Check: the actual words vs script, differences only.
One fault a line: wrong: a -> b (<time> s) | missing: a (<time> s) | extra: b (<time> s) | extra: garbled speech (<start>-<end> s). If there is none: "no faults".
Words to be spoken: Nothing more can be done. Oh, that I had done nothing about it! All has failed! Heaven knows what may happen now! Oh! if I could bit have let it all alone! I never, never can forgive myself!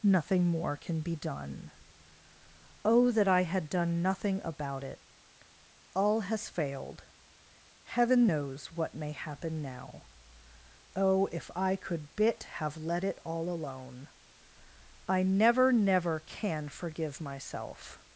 no faults